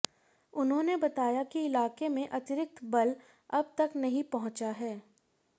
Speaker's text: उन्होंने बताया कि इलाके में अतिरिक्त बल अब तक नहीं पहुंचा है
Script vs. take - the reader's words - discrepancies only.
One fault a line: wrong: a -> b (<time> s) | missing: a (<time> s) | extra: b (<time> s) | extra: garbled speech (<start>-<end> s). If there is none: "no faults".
no faults